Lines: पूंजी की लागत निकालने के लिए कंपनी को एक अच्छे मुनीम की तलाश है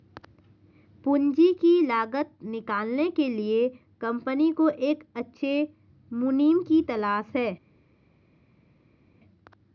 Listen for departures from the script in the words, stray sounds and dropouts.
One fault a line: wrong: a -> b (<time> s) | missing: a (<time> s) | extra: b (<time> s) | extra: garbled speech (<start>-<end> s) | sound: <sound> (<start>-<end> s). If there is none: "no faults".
no faults